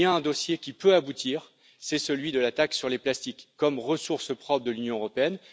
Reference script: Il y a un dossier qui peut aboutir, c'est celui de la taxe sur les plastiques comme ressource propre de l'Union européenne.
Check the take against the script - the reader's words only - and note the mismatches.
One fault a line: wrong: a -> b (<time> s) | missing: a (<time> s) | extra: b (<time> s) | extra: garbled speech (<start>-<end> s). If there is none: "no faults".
no faults